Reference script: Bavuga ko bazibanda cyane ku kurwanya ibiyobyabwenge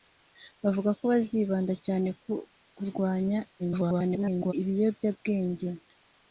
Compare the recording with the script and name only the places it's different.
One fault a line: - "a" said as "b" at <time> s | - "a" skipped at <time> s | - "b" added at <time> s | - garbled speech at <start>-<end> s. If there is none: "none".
- garbled speech at 3.6-4.5 s